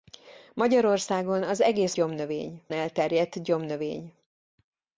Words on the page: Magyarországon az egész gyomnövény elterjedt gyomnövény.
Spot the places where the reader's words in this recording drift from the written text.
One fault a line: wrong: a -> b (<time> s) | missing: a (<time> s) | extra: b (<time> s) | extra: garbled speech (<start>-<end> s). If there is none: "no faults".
no faults